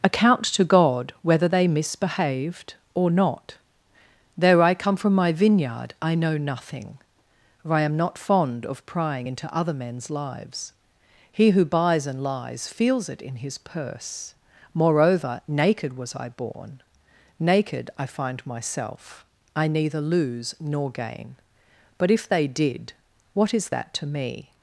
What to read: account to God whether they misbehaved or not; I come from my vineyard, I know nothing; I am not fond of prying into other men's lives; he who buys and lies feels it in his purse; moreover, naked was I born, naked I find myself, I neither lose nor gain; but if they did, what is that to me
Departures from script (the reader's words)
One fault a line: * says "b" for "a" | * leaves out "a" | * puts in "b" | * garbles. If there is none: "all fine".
* puts in "though"
* puts in "for"